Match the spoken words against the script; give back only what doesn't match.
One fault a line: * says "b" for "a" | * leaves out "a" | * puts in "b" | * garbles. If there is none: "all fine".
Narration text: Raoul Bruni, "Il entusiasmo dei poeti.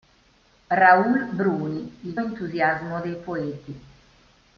all fine